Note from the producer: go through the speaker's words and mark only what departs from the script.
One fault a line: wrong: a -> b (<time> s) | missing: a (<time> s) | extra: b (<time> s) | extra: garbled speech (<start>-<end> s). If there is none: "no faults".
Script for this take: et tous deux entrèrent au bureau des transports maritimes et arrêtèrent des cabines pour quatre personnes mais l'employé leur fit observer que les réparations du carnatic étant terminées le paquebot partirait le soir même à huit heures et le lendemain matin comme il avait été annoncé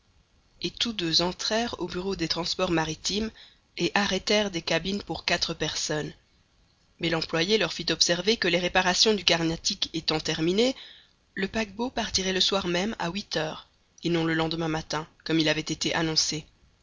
extra: non (14.1 s)